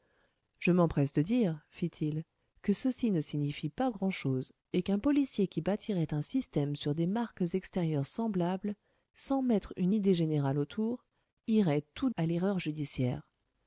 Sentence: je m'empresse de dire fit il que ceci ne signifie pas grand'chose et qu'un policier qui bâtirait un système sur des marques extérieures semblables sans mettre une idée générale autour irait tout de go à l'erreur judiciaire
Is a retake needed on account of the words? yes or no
yes